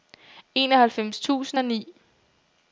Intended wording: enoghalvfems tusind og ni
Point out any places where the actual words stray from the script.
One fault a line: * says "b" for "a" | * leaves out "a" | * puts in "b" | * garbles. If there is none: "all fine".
all fine